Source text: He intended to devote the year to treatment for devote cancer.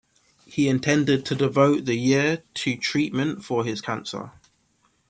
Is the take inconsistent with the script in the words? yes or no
yes